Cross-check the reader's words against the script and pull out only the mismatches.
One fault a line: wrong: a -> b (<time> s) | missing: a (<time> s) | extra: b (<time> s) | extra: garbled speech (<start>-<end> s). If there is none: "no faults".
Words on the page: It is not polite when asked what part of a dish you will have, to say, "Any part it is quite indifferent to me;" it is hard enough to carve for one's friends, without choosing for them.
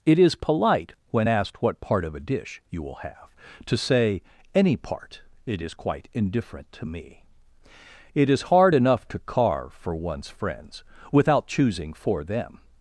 missing: not (0.3 s)